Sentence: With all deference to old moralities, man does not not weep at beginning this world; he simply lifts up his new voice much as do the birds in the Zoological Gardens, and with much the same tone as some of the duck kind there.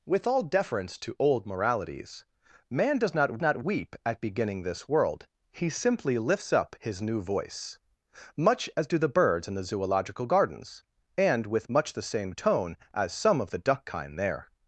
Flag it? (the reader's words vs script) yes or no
no